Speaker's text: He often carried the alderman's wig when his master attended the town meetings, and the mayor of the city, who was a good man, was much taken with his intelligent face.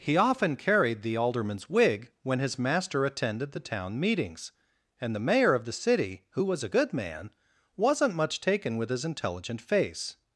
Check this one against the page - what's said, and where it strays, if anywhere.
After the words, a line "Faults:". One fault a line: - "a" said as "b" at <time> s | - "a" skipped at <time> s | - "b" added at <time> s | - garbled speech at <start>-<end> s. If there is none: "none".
He often carried the alderman's wig when his master attended the town meetings, and the mayor of the city, who was a good man, wasn't much taken with his intelligent face.
Faults:
- "was" said as "wasn't" at 7.8 s